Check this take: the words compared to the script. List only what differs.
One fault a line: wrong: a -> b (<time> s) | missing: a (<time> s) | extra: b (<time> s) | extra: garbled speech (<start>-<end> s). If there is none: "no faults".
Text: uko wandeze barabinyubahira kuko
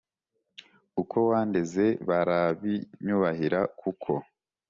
no faults